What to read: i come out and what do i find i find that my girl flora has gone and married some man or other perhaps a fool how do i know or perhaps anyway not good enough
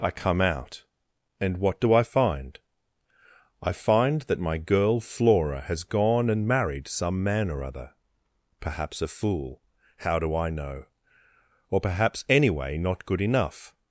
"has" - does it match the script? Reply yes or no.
yes